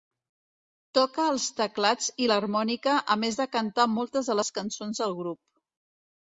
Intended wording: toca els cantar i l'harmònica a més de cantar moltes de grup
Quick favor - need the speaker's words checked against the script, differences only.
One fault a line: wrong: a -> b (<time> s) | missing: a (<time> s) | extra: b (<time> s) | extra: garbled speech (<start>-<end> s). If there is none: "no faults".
wrong: cantar -> teclats (1.6 s)
extra: les cançons del (4.4 s)